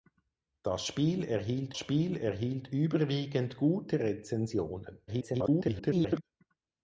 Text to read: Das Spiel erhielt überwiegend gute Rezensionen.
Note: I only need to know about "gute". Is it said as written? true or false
true